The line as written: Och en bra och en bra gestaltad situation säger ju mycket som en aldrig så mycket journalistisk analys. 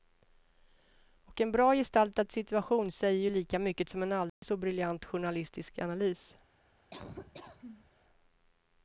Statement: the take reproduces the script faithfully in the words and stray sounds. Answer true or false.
false